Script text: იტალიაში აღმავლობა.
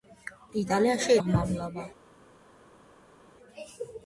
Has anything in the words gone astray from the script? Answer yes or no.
no